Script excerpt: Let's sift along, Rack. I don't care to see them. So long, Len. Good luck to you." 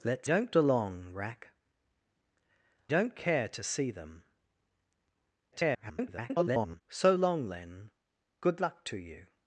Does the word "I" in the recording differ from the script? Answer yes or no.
yes